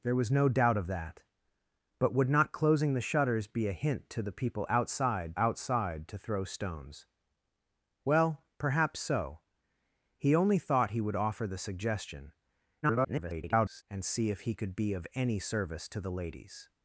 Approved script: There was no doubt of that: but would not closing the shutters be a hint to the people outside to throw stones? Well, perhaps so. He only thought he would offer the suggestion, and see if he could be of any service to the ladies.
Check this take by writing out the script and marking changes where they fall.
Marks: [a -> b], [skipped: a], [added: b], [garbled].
There was no doubt of that: but would not closing the shutters be a hint to the people outside [added: outside] to throw stones? Well, perhaps so. He only thought he would offer the suggestion, [garbled] and see if he could be of any service to the ladies.